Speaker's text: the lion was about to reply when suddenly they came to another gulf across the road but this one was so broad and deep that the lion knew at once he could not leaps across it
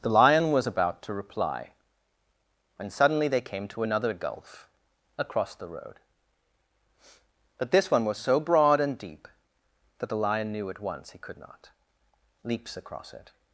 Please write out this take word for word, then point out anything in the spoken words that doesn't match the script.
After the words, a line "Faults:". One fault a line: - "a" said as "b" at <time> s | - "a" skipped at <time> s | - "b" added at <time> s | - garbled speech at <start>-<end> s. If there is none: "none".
the lion was about to reply when suddenly they came to another gulf across the road but this one was so broad and deep that the lion knew at once he could not leaps across it
Faults:
none